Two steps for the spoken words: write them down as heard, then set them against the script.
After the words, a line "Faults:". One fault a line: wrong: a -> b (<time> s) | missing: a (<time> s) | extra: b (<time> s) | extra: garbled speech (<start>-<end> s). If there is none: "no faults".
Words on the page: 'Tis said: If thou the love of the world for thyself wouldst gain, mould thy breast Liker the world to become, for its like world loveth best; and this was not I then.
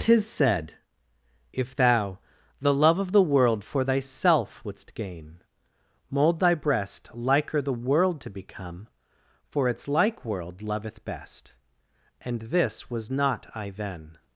'Tis said: If thou the love of the world for thyself wouldst gain, mould thy breast Liker the world to become, for its like world loveth best; and this was not I then.
Faults:
no faults